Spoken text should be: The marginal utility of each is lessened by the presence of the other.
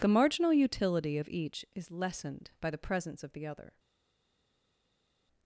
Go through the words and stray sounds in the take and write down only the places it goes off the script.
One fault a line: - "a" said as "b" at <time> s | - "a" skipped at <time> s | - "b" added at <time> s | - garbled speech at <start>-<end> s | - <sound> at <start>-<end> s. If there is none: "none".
none